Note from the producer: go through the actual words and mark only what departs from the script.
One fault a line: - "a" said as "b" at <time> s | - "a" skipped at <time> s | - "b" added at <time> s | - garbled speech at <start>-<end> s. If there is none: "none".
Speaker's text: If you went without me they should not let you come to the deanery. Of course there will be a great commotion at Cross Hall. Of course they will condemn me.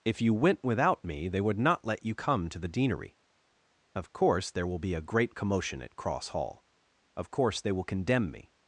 - "should" said as "would" at 1.4 s